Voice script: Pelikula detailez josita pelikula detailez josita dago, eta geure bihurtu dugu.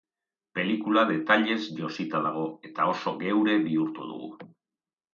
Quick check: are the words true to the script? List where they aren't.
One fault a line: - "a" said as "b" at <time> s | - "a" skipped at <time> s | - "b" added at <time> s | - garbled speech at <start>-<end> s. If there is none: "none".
- "pelikula detailez josita" skipped at 2.2 s
- "oso" added at 2.9 s